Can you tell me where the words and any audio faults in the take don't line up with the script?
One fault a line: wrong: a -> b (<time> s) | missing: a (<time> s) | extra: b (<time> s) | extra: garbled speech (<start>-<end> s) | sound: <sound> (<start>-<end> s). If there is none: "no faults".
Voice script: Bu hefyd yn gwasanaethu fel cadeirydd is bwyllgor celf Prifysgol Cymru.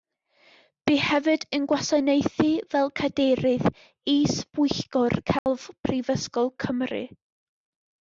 sound: dropout (5.4-5.5 s)